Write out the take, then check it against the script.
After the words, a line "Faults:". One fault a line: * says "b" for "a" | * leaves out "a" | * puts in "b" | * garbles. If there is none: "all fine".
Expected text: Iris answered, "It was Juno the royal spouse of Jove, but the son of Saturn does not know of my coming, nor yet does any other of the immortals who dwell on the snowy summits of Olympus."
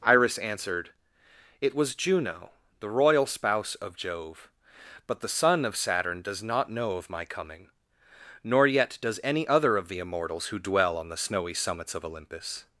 Iris answered, "It was Juno the royal spouse of Jove, but the son of Saturn does not know of my coming, nor yet does any other of the immortals who dwell on the snowy summits of Olympus."
Faults:
all fine